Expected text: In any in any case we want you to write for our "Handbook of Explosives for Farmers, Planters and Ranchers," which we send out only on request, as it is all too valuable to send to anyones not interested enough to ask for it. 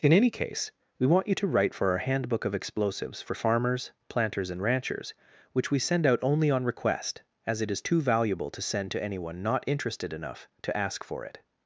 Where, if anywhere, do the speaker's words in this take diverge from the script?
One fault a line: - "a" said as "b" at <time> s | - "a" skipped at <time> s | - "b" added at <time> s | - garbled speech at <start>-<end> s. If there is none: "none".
- "in any" skipped at 0.3 s
- "all" skipped at 7.8 s
- "anyones" said as "anyone" at 9.0 s